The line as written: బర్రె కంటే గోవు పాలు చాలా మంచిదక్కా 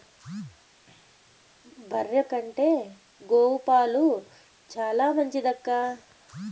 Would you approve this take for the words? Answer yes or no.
yes